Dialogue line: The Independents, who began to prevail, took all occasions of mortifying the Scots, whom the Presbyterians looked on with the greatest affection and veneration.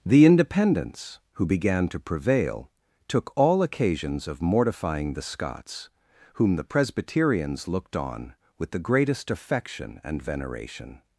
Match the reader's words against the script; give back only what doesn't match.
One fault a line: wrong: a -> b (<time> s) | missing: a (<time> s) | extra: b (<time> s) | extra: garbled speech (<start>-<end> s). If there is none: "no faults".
no faults